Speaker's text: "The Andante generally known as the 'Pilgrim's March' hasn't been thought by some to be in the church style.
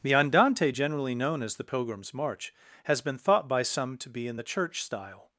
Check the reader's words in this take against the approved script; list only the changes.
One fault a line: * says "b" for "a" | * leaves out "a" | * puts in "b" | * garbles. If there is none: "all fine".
* says "has" for "hasn't"